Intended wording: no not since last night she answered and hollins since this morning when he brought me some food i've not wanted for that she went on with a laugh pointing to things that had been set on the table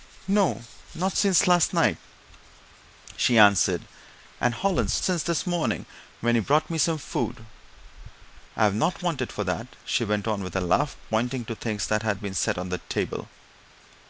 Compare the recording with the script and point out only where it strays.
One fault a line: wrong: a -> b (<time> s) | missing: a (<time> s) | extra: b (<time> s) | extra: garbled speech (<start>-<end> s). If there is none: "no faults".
no faults